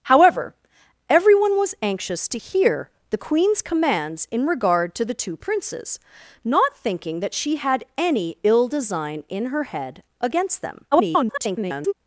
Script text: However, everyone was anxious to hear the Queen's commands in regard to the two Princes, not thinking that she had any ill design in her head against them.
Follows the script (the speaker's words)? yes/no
no